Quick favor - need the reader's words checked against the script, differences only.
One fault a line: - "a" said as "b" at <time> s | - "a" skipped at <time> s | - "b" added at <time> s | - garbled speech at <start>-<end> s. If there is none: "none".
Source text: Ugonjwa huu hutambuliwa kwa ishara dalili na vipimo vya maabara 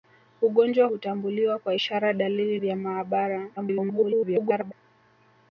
- "huu" skipped at 0.9 s
- "na vipimo" skipped at 2.6 s
- garbled speech at 3.6-4.7 s